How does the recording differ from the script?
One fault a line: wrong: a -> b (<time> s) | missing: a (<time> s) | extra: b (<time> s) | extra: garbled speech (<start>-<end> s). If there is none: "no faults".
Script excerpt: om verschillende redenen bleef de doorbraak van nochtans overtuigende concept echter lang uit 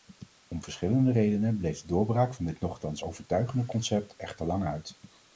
extra: dit (2.4 s)